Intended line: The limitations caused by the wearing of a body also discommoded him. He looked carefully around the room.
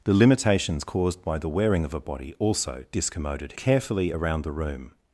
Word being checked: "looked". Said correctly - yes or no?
no